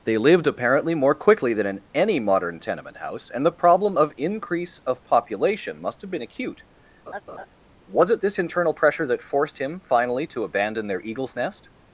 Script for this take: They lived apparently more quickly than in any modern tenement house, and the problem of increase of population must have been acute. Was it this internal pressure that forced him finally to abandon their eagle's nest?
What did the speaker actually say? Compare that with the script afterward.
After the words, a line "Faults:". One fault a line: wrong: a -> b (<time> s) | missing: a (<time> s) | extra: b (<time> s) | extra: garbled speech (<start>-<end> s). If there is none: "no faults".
They lived apparently more quickly than in any modern tenement house, and the problem of increase of population must have been acute. Was it this internal pressure that forced him finally to abandon their eagle's nest?
Faults:
no faults